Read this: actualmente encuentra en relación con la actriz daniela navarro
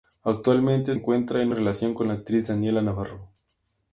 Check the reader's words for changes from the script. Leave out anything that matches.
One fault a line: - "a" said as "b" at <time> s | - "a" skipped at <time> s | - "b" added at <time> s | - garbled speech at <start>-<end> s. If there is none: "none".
none